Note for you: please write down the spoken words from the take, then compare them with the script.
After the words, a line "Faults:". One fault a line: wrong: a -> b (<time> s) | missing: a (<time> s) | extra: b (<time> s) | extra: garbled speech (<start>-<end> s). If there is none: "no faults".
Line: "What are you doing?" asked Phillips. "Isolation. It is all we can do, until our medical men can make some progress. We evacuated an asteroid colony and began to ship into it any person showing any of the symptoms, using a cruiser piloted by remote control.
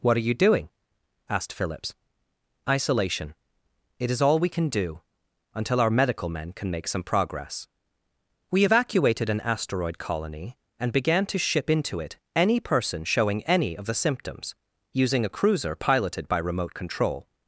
"What are you doing?" asked Phillips. "Isolation. It is all we can do, until our medical men can make some progress. We evacuated an asteroid colony and began to ship into it any person showing any of the symptoms, using a cruiser piloted by remote control.
Faults:
no faults